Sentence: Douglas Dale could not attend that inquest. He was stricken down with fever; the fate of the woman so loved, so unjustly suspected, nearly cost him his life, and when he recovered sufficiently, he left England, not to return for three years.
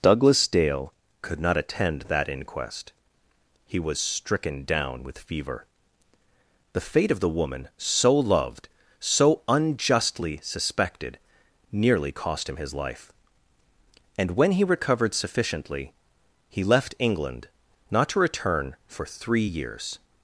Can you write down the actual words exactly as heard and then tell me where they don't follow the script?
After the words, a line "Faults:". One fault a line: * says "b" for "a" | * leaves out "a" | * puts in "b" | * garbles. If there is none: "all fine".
Douglas Dale could not attend that inquest. He was stricken down with fever; the fate of the woman so loved, so unjustly suspected, nearly cost him his life, and when he recovered sufficiently, he left England, not to return for three years.
Faults:
all fine